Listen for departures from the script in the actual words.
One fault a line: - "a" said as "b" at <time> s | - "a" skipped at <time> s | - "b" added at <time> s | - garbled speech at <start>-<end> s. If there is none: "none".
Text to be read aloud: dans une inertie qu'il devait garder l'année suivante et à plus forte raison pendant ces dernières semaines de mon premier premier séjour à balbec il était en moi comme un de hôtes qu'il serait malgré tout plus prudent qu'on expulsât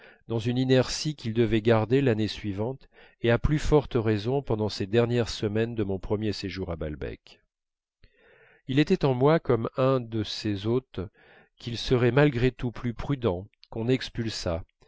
- "premier" skipped at 6.3 s
- "ces" added at 10.2 s